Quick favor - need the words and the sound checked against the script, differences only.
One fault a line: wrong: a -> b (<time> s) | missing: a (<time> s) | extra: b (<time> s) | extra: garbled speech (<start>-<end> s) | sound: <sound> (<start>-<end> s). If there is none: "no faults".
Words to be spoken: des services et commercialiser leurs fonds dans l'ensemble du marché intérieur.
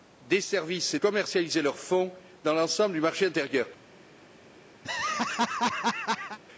sound: laugh (4.8-6.4 s)